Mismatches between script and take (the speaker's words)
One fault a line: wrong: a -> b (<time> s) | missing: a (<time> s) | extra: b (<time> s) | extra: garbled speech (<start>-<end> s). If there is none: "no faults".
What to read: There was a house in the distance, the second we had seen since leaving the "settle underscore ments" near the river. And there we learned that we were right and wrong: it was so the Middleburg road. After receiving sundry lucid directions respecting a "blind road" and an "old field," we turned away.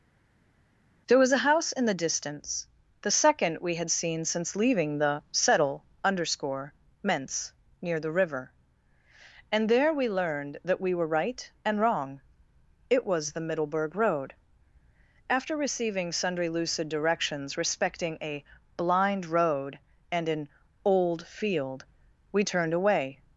missing: so (13.3 s)